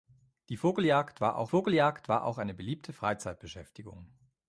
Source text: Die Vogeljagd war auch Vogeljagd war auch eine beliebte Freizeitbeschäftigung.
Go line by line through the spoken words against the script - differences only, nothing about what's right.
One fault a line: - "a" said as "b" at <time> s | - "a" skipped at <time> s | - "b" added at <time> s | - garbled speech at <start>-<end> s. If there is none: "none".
none